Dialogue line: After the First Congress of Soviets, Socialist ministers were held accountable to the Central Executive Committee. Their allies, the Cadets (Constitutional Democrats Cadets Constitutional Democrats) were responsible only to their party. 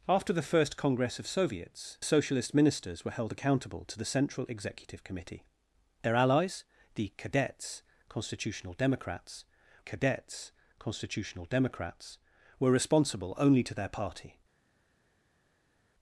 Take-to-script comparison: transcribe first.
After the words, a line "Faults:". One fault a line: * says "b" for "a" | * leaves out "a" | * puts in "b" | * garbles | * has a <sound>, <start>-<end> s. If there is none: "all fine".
After the First Congress of Soviets, Socialist ministers were held accountable to the Central Executive Committee. Their allies, the Cadets (Constitutional Democrats Cadets Constitutional Democrats) were responsible only to their party.
Faults:
all fine